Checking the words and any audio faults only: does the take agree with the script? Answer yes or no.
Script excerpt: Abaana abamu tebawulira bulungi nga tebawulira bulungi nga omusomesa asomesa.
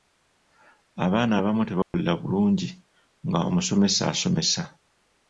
no